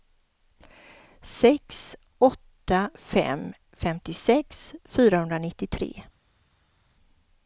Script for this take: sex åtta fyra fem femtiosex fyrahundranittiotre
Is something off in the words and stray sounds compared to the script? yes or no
yes